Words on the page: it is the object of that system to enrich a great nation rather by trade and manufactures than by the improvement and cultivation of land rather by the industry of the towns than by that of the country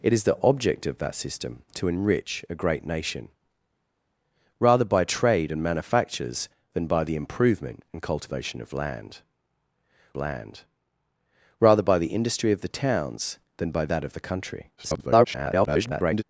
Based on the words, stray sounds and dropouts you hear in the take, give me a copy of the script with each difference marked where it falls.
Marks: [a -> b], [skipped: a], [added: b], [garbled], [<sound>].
it is the object of that system to enrich a great nation rather by trade and manufactures than by the improvement and cultivation of land [added: land] rather by the industry of the towns than by that of the country [garbled]